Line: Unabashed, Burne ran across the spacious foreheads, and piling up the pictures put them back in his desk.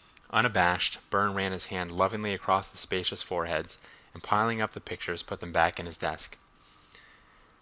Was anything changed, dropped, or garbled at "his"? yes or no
no